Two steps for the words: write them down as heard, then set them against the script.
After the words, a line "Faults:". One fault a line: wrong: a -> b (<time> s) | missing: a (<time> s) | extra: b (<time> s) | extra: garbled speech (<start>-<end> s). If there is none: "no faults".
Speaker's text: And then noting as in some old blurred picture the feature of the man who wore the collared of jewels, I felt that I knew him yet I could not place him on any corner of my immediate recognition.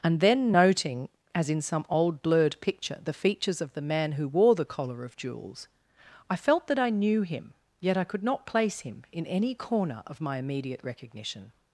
And then noting as in some old blurred picture the features of the man who wore the collar of jewels, I felt that I knew him yet I could not place him in any corner of my immediate recognition.
Faults:
wrong: feature -> features (3.1 s)
wrong: collared -> collar (4.7 s)
wrong: on -> in (9.1 s)